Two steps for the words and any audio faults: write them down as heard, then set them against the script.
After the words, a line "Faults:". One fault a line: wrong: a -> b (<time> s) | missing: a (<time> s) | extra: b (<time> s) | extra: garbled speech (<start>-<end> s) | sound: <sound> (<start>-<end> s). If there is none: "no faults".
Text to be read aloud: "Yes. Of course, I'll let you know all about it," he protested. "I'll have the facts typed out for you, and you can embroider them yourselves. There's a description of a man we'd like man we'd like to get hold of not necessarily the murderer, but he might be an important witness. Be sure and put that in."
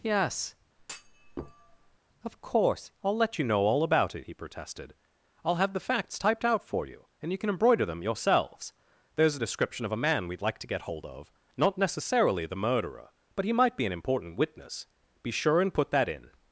"Yes. Of course, I'll let you know all about it," he protested. "I'll have the facts typed out for you, and you can embroider them yourselves. There's a description of a man we'd like to get hold of not necessarily the murderer, but he might be an important witness. Be sure and put that in."
Faults:
sound: thud (0.8-2.0 s)
missing: man we'd like (10.6 s)